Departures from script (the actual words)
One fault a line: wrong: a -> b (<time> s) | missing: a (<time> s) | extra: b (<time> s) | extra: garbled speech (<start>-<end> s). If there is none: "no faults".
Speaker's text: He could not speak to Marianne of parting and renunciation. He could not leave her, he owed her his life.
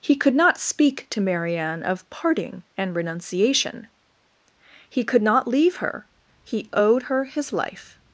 no faults